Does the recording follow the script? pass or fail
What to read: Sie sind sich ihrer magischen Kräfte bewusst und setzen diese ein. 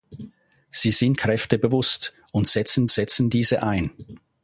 fail